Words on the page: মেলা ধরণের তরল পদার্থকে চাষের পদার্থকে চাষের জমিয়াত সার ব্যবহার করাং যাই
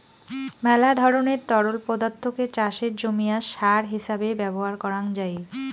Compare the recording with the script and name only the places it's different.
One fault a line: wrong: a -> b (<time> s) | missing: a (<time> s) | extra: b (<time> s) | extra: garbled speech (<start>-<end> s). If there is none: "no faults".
missing: পদার্থকে চাষের (2.9 s)
extra: হিছাবে (3.9 s)